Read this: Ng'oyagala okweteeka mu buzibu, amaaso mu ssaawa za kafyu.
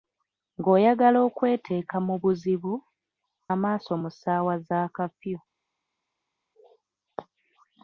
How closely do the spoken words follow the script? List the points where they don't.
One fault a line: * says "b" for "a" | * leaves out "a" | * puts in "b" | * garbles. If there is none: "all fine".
all fine